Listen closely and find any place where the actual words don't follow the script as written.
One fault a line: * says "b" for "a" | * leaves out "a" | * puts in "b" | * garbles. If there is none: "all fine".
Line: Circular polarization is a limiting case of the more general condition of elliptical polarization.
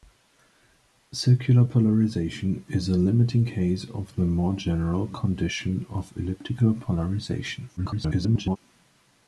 * garbles